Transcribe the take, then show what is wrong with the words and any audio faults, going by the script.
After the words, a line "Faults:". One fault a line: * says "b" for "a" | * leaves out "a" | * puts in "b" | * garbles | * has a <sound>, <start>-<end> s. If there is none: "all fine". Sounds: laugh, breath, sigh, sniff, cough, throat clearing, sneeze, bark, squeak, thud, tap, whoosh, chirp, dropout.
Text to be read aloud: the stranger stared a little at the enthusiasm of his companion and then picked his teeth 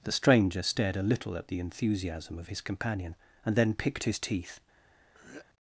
the stranger stared a little at the enthusiasm of his companion and then picked his teeth
Faults:
* has a throat clearing, 5.1-5.5 s